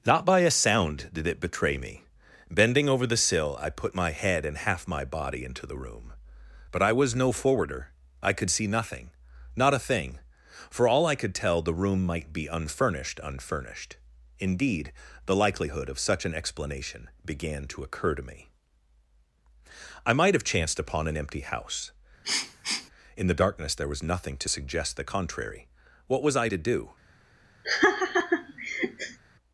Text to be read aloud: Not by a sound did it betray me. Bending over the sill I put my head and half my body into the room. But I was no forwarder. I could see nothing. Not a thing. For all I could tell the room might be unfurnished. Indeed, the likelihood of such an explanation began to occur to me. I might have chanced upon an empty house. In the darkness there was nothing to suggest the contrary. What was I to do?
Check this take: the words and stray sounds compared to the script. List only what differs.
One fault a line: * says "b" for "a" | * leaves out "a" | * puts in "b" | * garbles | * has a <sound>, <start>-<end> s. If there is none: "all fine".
* puts in "unfurnished"
* has a sniff, 22.2-22.9 s
* has a laugh, 27.6-29.2 s